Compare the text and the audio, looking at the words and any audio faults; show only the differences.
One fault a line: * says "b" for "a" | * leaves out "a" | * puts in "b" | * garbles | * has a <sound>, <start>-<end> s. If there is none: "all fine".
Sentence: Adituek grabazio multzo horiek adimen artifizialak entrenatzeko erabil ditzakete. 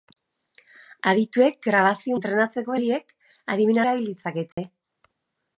* says "entrenatzeko" for "multzo"
* leaves out "artifizialak entrenatzeko"
* has a dropout, 4.5-4.6 s